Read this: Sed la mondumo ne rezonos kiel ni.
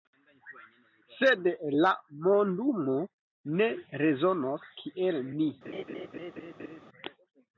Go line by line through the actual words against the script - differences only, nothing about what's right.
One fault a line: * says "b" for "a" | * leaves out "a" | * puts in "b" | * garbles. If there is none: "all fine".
all fine